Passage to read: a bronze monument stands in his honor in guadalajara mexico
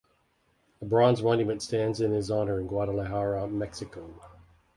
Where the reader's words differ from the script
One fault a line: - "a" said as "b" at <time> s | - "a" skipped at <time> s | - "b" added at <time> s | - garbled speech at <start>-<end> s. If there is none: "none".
none